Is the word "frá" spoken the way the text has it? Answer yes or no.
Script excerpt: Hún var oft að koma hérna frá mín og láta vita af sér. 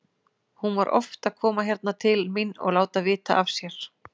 no